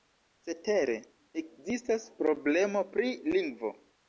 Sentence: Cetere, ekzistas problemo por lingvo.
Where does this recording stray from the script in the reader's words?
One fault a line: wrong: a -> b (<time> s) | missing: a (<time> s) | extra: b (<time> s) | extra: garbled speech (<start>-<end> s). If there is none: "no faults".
wrong: por -> pri (2.9 s)